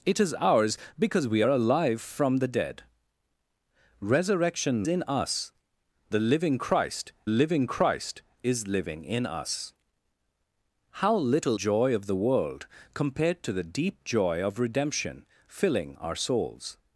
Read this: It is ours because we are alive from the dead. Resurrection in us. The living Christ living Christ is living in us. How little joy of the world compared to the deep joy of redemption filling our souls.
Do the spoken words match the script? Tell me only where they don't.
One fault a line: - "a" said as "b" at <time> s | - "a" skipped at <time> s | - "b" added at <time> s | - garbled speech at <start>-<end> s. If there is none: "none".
none